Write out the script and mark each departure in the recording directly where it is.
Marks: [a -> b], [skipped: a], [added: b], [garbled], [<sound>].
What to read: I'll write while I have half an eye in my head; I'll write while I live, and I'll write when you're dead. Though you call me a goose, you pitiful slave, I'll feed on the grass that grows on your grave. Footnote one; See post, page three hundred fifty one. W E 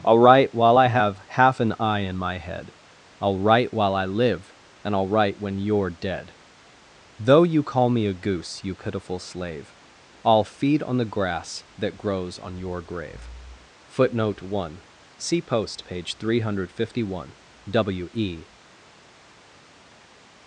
I'll write while I have half an eye in my head; I'll write while I live, and I'll write when you're dead. Though you call me a goose, you pitiful slave, I'll feed on the grass that grows on your grave. Footnote one; See post, page three hundred fifty one. W E